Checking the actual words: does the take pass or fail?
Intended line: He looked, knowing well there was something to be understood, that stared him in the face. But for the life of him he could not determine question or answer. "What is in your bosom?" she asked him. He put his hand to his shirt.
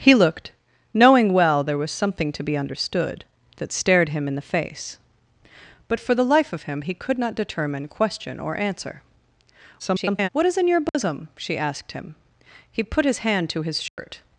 fail